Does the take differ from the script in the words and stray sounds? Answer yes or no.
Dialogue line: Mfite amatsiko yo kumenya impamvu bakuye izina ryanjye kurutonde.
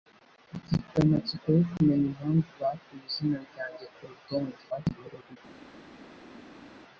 yes